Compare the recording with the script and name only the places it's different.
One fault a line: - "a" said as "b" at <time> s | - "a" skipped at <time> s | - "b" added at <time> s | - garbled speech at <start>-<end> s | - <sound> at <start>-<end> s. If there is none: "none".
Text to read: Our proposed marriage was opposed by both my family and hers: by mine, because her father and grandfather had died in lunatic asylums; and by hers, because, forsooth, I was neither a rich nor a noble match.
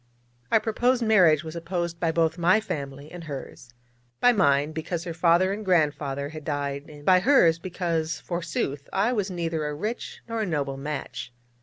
- "lunatic asylums and" skipped at 7.1 s